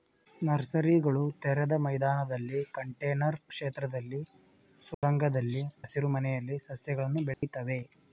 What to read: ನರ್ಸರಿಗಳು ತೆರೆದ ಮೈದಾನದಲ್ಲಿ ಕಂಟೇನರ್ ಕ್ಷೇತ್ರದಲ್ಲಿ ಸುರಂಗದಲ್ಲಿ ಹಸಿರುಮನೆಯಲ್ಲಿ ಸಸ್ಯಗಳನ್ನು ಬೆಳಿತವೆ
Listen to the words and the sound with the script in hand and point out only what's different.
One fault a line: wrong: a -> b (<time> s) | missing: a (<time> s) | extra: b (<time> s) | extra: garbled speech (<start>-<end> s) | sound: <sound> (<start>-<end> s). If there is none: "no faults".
sound: dropout (4.9-5.0 s)
sound: dropout (7.3-7.4 s)